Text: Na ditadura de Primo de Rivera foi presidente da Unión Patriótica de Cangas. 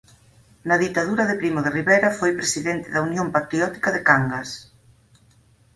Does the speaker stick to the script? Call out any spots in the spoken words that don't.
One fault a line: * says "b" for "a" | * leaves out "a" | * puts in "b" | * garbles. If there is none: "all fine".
all fine